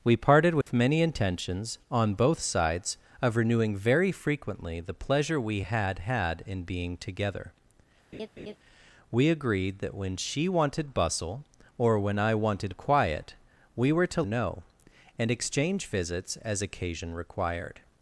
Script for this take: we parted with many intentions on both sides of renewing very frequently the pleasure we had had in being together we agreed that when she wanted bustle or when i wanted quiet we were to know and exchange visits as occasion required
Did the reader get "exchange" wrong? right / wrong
right